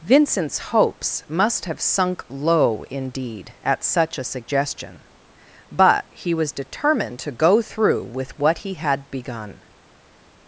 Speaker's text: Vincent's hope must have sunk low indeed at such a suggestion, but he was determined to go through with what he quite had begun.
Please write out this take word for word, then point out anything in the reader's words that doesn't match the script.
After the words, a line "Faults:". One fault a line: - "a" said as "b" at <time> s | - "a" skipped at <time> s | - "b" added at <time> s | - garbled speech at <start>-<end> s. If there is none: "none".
Vincent's hopes must have sunk low indeed at such a suggestion, but he was determined to go through with what he had begun.
Faults:
- "hope" said as "hopes" at 0.6 s
- "quite" skipped at 8.7 s